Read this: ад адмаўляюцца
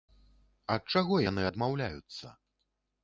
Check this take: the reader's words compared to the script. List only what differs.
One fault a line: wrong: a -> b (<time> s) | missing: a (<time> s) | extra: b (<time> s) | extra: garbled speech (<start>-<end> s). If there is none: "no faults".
extra: чаго яны (0.9 s)